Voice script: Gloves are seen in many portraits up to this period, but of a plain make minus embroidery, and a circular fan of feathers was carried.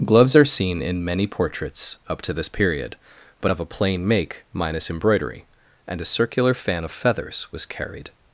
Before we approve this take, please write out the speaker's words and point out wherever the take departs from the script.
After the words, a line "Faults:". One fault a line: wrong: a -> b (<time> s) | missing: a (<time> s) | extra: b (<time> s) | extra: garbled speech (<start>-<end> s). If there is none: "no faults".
Gloves are seen in many portraits up to this period, but of a plain make minus embroidery, and a circular fan of feathers was carried.
Faults:
no faults